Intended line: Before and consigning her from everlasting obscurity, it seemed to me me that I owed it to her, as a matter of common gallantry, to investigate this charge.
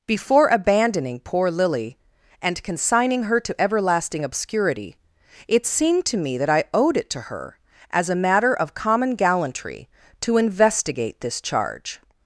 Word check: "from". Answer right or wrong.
wrong